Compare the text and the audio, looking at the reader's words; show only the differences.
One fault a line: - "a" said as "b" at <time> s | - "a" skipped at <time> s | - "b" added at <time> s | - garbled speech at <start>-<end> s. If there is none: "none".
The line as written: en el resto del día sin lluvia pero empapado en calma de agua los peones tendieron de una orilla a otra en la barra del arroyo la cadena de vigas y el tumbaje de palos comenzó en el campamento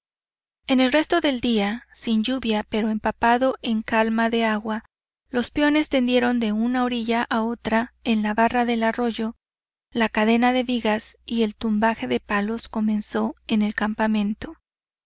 none